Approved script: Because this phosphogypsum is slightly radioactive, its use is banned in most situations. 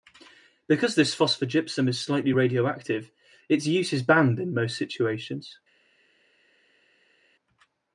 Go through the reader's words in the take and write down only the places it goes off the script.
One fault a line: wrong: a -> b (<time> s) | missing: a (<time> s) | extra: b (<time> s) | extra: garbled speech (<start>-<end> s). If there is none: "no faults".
no faults